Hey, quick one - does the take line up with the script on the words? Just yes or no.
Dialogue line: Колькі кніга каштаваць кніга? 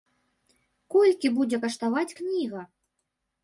no